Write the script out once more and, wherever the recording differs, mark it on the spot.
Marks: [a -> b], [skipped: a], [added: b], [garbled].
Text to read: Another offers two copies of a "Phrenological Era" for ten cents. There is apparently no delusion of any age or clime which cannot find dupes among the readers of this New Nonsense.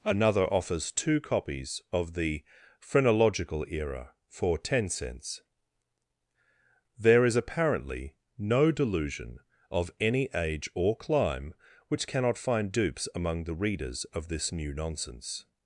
Another offers two copies of [a -> the] "Phrenological Era" for ten cents. There is apparently no delusion of any age or clime which cannot find dupes among the readers of this New Nonsense.